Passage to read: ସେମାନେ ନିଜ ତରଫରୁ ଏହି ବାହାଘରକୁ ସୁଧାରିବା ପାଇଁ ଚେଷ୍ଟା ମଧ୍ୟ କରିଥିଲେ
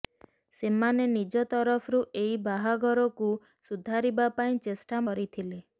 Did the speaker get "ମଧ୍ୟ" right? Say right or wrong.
wrong